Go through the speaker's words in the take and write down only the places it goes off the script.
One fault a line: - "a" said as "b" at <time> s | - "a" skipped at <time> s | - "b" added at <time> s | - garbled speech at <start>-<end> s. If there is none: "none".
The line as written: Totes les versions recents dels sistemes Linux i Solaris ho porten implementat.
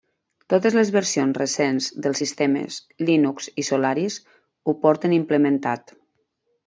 none